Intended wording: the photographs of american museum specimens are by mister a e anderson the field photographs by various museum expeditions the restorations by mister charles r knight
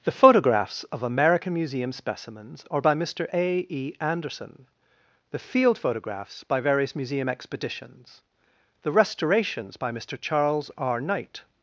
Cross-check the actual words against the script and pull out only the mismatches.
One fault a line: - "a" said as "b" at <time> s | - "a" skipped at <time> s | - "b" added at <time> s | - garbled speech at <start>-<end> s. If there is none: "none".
none